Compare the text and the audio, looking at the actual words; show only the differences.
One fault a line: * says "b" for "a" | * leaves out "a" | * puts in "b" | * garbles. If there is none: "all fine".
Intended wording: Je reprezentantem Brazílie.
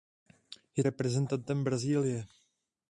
all fine